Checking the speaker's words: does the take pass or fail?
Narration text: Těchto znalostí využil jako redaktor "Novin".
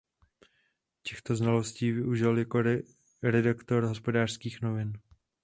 fail